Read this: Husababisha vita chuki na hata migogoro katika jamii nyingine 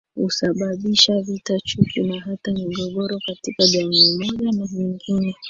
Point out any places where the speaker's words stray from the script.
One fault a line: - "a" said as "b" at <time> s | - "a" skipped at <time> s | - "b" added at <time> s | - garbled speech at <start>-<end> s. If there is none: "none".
- "moja na" added at 4.2 s